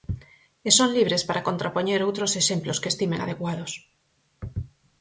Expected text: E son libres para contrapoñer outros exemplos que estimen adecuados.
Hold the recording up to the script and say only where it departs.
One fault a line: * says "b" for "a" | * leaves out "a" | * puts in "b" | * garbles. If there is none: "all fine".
all fine